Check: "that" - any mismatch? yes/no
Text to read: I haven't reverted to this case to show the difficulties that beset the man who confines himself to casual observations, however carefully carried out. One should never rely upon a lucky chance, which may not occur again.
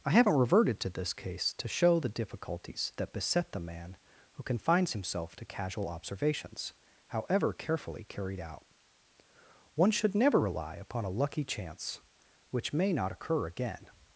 no